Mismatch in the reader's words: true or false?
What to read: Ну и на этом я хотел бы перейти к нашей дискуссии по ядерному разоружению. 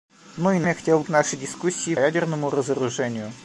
true